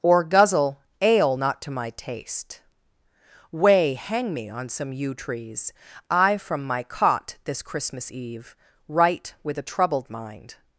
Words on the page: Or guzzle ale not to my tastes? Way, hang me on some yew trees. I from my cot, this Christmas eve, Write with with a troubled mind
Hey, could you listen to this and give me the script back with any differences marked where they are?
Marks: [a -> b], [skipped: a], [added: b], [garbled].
Or guzzle ale not to my [tastes? -> taste] Way, hang me on some yew trees. I from my cot, this Christmas eve, Write with [skipped: with] a troubled mind